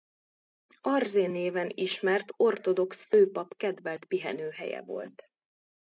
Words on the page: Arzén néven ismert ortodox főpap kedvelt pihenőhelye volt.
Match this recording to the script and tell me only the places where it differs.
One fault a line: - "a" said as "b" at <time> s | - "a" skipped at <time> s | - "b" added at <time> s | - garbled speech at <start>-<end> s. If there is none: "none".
none